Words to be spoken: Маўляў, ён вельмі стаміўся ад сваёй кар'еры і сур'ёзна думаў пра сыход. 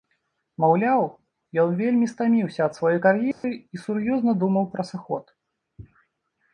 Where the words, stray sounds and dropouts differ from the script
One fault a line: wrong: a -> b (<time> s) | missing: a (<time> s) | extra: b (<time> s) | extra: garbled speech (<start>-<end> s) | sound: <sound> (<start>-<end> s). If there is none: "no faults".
sound: dropout (3.3-3.4 s)